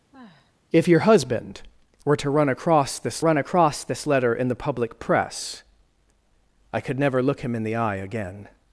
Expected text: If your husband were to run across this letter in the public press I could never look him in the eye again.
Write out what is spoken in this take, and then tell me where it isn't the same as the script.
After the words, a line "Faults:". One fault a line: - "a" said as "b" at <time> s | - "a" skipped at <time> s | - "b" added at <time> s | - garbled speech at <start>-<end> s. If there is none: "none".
If your husband were to run across this run across this letter in the public press I could never look him in the eye again.
Faults:
- "run across this" added at 3.2 s